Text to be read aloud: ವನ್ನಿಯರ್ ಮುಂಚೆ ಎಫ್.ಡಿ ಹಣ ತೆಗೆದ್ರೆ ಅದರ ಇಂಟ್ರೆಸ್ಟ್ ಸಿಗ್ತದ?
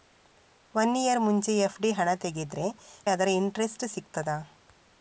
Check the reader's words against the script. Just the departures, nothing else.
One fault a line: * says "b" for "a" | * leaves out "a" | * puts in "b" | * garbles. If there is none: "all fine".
all fine